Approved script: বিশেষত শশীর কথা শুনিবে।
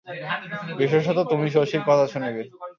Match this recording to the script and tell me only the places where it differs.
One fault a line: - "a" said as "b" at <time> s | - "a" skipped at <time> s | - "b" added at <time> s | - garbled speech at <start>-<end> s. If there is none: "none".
- "তুমি" added at 1.3 s